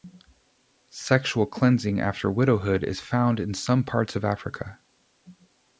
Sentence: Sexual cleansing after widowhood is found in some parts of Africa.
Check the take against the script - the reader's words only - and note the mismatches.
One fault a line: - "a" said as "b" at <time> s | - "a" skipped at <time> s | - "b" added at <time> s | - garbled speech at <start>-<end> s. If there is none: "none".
none